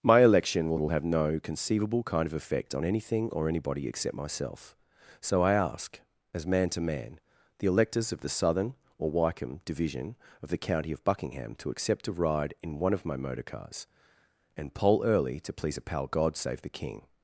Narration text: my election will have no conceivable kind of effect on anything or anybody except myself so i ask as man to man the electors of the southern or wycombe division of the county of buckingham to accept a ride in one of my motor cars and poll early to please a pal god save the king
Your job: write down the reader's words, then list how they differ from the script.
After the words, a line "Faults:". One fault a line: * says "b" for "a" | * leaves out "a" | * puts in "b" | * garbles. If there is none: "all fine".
my election will will have no conceivable kind of effect on anything or anybody except myself so i ask as man to man the electors of the southern or wycombe division of the county of buckingham to accept a ride in one of my motor cars and poll early to please a pal god save the king
Faults:
* puts in "will"